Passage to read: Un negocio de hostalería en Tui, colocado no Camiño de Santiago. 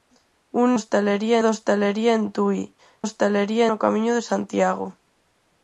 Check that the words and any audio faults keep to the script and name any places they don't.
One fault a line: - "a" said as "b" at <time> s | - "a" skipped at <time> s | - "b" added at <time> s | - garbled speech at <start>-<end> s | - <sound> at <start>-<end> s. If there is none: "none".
- "negocio" said as "hostalería" at 0.7 s
- "colocado" said as "hostalería" at 3.0 s